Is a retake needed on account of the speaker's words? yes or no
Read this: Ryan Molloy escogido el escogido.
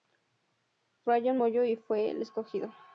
yes